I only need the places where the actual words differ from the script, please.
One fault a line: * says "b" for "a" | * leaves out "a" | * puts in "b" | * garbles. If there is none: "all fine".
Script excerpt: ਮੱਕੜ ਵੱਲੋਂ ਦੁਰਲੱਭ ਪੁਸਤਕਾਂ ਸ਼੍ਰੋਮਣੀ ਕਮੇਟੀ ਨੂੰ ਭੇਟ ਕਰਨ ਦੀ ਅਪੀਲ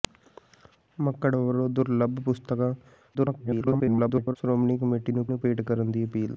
* garbles
* puts in "ਨੂੰ"